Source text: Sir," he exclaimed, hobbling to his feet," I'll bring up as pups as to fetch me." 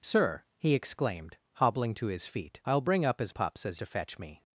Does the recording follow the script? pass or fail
pass